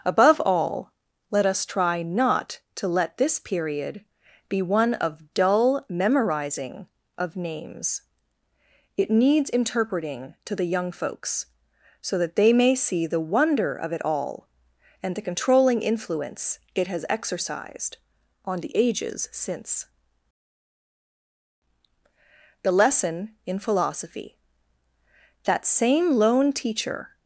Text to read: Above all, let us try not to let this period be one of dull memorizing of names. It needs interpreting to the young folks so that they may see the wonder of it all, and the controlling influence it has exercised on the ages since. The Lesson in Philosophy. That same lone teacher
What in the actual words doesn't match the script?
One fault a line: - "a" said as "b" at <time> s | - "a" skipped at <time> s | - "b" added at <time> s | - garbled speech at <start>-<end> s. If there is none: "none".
none